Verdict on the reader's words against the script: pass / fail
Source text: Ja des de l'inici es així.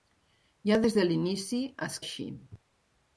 pass